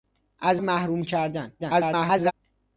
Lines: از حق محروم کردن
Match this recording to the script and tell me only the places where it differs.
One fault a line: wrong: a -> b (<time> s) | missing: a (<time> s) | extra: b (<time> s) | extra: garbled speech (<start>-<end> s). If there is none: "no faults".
missing: حق (0.6 s)
extra: garbled speech (1.6-2.3 s)